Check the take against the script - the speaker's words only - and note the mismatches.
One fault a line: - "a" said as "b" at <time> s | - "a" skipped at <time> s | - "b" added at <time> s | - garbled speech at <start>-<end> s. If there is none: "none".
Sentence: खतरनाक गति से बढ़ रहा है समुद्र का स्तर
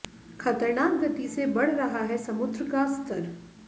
none